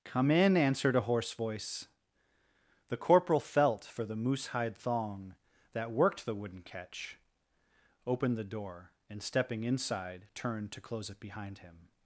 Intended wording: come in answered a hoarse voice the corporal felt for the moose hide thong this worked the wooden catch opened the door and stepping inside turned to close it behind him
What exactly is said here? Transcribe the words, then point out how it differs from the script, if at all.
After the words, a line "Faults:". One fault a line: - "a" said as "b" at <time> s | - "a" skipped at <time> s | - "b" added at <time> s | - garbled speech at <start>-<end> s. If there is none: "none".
come in answered a hoarse voice the corporal felt for the moose hide thong that worked the wooden catch opened the door and stepping inside turned to close it behind him
Faults:
- "this" said as "that" at 5.7 s